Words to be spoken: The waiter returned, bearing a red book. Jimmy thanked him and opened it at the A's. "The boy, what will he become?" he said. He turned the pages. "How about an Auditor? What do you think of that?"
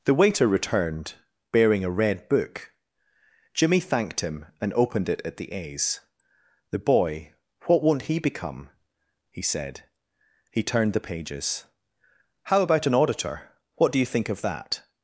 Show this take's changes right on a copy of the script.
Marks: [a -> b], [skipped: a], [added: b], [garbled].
The waiter returned, bearing a red book. Jimmy thanked him and opened it at the A's. "The boy, what [will -> won't] he become?" he said. He turned the pages. "How about an Auditor? What do you think of that?"